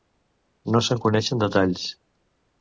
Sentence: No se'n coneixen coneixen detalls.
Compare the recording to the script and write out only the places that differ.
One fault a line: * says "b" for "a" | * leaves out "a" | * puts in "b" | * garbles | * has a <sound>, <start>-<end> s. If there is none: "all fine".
* leaves out "coneixen"